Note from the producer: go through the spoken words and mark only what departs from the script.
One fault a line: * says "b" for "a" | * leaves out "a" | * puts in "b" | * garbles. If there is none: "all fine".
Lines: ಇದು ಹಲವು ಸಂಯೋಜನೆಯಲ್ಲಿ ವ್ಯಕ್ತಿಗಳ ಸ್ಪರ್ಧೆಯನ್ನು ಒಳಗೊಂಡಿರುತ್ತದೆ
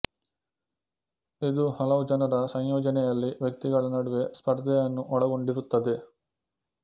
* puts in "ಜನರ"
* puts in "ನಡುವೆ"